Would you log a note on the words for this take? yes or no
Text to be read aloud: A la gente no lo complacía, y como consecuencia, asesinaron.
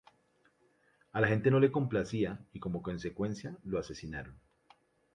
yes